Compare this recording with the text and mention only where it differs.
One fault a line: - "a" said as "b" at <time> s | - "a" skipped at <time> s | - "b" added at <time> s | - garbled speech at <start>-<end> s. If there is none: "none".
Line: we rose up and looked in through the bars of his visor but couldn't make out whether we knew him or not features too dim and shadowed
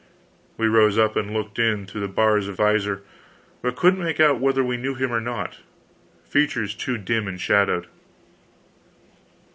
- "his" skipped at 2.6 s